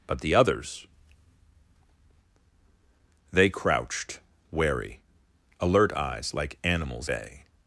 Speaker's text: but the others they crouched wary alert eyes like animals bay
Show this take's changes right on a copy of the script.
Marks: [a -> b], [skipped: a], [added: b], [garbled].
but the others they crouched wary alert eyes like animals bay